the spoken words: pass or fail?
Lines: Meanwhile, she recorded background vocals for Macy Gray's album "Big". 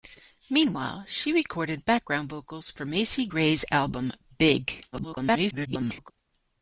fail